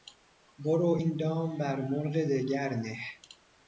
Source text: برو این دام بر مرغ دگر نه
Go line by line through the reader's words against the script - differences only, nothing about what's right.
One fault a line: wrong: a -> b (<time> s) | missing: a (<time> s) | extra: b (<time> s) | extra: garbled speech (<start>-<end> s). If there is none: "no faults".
no faults